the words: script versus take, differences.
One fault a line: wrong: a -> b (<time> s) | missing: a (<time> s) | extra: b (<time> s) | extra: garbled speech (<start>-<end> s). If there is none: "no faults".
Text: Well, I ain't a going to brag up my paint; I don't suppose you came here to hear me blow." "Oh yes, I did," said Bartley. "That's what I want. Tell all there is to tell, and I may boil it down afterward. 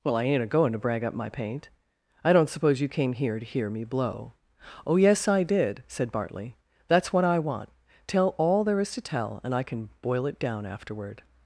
wrong: may -> can (9.6 s)